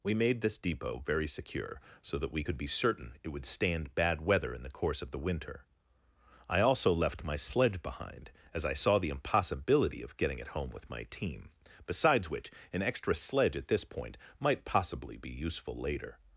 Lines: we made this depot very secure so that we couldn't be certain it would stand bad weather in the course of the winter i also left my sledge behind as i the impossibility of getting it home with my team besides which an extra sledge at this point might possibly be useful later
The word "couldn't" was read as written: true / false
false